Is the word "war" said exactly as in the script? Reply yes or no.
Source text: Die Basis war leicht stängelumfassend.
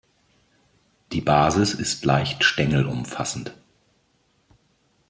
no